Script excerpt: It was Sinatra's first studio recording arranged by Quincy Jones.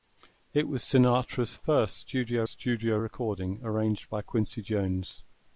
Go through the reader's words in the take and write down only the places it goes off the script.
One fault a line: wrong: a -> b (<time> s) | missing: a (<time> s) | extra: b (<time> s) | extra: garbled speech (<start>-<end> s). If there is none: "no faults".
extra: studio (2.5 s)